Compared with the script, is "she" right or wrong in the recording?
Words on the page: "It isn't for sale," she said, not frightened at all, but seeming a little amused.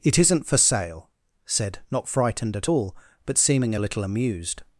wrong